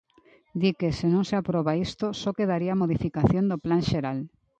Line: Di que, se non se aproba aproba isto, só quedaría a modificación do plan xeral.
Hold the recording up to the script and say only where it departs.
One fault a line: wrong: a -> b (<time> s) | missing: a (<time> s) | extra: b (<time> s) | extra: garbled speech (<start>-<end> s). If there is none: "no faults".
missing: aproba (1.8 s)